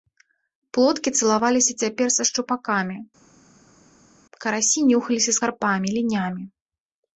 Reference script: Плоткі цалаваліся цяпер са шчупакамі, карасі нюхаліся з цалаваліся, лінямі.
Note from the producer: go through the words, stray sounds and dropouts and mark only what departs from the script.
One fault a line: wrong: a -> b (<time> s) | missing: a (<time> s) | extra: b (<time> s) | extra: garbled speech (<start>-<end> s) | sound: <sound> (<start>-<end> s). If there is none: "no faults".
wrong: цалаваліся -> карпамі (5.4 s)